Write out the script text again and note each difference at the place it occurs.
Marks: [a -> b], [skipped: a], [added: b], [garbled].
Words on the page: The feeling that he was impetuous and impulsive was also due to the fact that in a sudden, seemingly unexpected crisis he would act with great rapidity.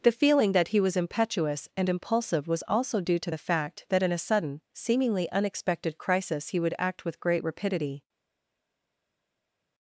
The feeling that he was impetuous and impulsive was also due to the fact that in a sudden, seemingly unexpected crisis he would act with great rapidity.